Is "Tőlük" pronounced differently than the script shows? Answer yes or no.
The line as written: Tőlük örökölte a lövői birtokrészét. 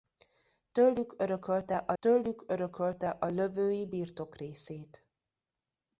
no